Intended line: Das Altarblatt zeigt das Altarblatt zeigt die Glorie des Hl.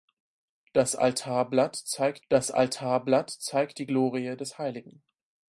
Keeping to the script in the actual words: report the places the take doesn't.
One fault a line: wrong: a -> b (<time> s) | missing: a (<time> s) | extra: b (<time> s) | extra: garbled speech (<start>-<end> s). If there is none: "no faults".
no faults